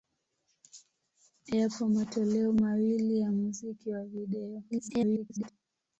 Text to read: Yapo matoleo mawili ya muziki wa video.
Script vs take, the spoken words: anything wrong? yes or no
yes